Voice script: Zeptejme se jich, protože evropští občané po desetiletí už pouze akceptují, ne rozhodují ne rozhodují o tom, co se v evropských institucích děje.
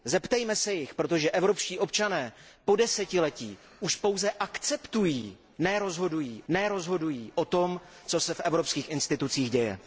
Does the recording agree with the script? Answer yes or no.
yes